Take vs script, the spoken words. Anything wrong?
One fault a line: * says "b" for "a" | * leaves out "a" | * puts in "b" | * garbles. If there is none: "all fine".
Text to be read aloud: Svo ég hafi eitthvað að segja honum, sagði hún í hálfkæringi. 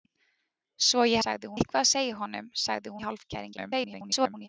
* says "sagði" for "hafi"
* leaves out "hún"
* garbles